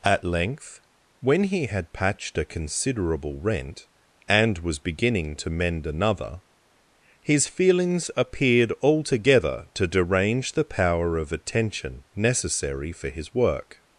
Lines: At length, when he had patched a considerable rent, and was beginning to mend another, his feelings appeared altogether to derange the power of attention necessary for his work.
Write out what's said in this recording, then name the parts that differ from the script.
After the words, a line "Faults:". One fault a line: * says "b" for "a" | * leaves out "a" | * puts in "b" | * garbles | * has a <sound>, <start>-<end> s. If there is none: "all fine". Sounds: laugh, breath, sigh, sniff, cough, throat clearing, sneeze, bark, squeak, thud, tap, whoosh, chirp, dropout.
At length, when he had patched a considerable rent, and was beginning to mend another, his feelings appeared altogether to derange the power of attention necessary for his work.
Faults:
all fine